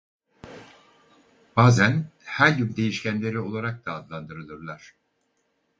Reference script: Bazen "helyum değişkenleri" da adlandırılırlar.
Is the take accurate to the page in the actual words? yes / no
no